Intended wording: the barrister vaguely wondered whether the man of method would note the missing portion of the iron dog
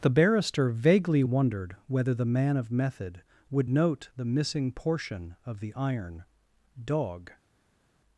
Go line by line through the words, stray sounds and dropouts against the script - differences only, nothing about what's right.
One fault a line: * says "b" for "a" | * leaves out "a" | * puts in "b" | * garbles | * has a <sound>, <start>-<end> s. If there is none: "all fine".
all fine